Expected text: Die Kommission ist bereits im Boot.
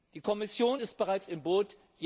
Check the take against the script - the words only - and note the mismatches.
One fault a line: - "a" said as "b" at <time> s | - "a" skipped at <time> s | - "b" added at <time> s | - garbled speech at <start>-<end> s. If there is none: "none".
none